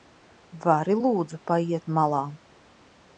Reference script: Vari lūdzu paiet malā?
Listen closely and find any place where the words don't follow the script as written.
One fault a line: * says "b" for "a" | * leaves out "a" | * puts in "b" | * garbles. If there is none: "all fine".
all fine